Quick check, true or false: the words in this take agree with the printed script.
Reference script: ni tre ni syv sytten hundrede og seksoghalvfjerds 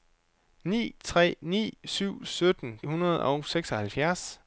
true